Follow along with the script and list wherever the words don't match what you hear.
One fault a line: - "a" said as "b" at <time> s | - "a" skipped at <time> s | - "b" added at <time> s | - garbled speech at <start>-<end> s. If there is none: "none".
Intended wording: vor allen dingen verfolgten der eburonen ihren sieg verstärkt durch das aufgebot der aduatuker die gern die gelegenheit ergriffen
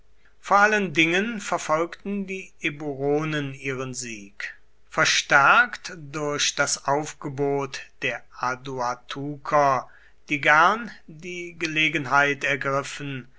- "der" said as "die" at 2.2 s